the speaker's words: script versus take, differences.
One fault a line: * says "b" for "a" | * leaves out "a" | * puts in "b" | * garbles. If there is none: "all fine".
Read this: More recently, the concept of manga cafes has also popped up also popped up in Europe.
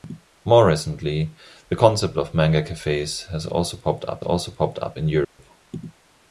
all fine